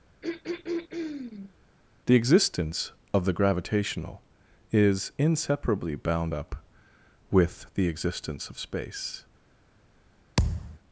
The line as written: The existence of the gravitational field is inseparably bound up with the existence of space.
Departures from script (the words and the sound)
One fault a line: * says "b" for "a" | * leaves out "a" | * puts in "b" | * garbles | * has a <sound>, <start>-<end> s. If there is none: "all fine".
* has a throat clearing, 0.2-1.5 s
* leaves out "field"
* has a thud, 10.4-10.8 s